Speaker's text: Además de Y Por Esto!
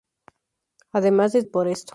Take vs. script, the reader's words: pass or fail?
pass